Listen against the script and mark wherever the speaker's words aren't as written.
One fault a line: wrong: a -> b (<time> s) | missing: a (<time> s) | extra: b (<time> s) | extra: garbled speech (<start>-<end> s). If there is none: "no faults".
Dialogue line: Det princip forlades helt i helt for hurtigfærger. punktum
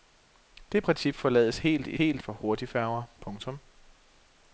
no faults